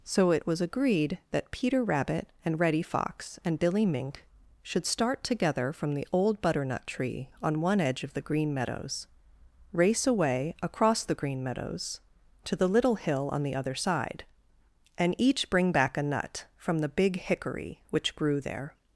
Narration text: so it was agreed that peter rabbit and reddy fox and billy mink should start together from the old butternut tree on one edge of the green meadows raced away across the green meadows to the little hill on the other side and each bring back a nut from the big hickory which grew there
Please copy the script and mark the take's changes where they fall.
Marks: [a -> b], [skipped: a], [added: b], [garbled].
so it was agreed that peter rabbit and reddy fox and billy mink should start together from the old butternut tree on one edge of the green meadows [raced -> race] away across the green meadows to the little hill on the other side and each bring back a nut from the big hickory which grew there